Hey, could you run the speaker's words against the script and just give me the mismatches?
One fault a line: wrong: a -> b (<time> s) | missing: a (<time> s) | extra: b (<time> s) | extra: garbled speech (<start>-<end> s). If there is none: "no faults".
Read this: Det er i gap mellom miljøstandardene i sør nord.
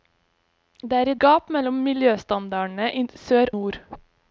no faults